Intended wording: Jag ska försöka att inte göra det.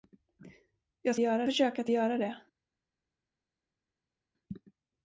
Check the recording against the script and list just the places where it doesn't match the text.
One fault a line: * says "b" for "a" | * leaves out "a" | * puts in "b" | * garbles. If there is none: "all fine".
* says "göra" for "ska"
* leaves out "inte"